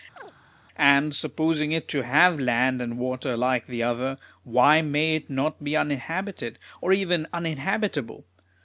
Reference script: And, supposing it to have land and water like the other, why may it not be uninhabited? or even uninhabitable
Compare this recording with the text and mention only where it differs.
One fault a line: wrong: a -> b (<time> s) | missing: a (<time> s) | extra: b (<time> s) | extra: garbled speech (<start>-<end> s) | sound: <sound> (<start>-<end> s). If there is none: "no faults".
sound: chirp (0.2-0.3 s)